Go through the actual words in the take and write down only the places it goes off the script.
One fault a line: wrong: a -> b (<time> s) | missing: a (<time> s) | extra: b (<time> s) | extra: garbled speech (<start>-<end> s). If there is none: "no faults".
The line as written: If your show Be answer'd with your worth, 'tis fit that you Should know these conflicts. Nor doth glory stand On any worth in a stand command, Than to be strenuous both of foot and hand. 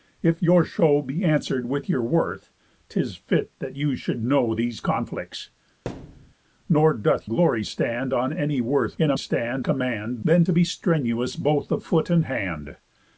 no faults